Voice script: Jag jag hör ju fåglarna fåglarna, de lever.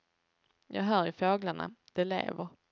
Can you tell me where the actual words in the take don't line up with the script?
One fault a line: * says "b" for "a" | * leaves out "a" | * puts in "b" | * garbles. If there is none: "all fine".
* leaves out "jag"
* leaves out "fåglarna"